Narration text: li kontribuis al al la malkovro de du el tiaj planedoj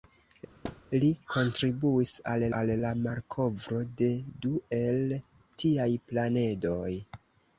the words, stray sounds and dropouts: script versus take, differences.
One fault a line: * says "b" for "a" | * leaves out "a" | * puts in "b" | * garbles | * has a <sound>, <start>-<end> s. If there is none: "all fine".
* has a thud, 0.6-0.8 s